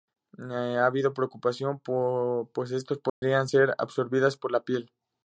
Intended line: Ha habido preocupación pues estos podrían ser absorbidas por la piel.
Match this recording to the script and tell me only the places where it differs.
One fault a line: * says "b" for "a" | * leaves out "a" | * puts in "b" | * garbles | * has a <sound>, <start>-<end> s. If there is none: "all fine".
* has a dropout, 3.1-3.2 s